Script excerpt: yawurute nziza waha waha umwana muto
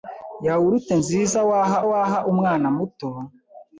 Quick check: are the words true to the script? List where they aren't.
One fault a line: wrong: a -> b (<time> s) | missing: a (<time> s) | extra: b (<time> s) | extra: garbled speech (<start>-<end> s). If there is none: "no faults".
no faults